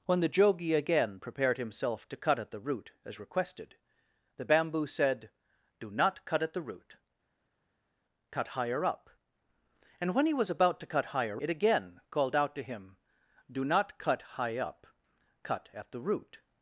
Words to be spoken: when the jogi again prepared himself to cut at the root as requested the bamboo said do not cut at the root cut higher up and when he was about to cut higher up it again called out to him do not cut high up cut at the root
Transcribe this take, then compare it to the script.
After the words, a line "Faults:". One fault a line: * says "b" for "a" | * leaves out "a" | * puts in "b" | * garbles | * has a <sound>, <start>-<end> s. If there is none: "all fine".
when the jogi again prepared himself to cut at the root as requested the bamboo said do not cut at the root cut higher up and when he was about to cut higher it again called out to him do not cut high up cut at the root
Faults:
* leaves out "up"